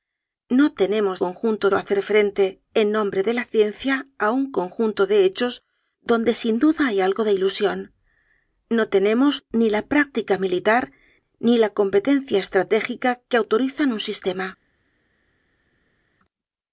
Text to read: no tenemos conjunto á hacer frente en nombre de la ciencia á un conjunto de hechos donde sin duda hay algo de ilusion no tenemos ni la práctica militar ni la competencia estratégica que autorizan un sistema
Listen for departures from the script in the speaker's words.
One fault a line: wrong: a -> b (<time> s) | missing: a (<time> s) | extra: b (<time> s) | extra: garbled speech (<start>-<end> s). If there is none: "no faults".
no faults